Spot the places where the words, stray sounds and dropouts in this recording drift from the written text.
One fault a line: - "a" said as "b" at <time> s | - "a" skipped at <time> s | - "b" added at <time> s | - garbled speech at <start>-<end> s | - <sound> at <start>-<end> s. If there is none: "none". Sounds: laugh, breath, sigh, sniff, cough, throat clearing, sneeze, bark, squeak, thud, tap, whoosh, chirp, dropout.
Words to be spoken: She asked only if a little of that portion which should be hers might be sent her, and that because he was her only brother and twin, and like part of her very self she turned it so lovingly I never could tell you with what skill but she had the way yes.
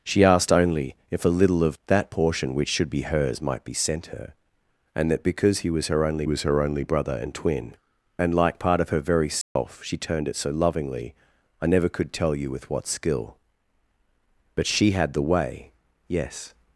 - "was her only" added at 6.2 s
- dropout at 9.4-9.6 s